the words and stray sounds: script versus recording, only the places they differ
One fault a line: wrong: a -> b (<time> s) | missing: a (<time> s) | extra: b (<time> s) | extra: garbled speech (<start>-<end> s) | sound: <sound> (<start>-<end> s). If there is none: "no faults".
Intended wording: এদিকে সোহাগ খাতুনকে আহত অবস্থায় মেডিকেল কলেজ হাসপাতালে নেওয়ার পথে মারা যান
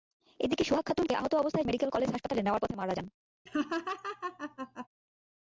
sound: laugh (3.5-4.9 s)